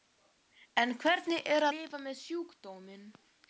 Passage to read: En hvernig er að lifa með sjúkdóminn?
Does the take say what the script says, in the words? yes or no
no